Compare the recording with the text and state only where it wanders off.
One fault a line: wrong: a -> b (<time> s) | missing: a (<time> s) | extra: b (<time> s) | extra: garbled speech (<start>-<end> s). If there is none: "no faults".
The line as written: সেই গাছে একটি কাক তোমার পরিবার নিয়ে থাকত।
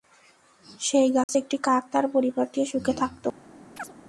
wrong: তোমার -> তার (1.9 s)
extra: সুখে (2.7 s)